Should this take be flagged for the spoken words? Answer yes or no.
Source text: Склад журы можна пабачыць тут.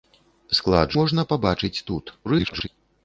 yes